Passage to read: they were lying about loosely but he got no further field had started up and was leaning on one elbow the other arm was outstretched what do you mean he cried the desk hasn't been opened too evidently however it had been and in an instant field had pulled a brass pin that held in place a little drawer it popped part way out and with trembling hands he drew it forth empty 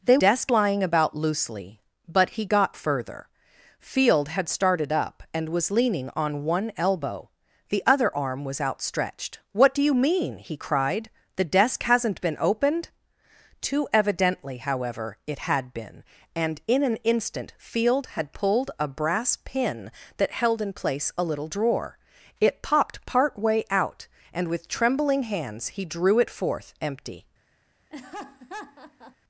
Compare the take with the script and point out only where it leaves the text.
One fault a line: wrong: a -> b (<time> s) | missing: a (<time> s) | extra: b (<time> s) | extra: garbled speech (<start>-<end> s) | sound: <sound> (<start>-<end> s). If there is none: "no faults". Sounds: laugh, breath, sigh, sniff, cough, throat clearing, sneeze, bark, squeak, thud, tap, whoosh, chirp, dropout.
wrong: were -> desk (0.2 s)
missing: no (2.8 s)
sound: laugh (27.9-29.2 s)